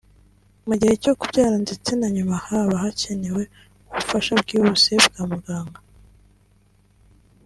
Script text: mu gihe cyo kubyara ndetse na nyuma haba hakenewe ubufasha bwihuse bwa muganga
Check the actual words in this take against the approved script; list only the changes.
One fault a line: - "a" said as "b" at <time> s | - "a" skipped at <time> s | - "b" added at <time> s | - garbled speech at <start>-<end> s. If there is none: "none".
none